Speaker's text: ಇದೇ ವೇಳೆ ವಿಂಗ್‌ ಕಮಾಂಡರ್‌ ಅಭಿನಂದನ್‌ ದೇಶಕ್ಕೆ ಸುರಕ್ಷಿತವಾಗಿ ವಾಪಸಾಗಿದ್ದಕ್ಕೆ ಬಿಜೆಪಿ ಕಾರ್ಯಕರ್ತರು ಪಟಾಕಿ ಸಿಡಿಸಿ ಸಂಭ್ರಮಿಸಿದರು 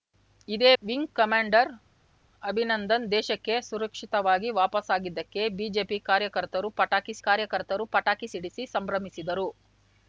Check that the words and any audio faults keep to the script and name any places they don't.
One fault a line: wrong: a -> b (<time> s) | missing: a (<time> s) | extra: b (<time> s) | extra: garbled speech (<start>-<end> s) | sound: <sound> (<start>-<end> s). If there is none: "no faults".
missing: ವೇಳೆ (0.7 s)
extra: ಕಾರ್ಯಕರ್ತರು ಪಟಾಕಿ (7.3 s)